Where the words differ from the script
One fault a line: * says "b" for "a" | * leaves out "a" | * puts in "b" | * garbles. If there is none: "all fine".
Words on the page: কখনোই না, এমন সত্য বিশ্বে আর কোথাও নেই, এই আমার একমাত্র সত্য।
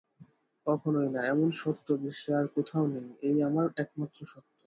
all fine